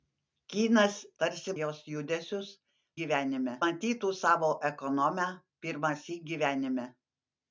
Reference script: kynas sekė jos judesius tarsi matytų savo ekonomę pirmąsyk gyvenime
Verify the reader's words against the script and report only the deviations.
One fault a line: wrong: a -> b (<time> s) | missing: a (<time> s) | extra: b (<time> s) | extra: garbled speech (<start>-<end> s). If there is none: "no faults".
wrong: sekė -> tarsi (1.2 s)
wrong: tarsi -> gyvenime (3.0 s)